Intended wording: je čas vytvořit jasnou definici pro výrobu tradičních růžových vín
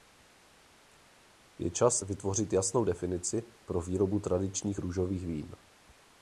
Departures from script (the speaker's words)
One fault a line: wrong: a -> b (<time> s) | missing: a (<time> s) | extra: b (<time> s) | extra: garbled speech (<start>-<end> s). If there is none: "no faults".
no faults